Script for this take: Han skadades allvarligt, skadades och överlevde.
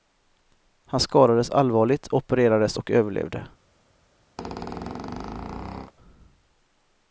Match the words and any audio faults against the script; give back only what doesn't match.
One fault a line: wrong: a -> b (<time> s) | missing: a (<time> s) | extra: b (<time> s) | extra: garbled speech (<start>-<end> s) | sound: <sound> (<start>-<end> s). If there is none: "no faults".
wrong: skadades -> opererades (2.1 s)
sound: squeak (4.4-5.9 s)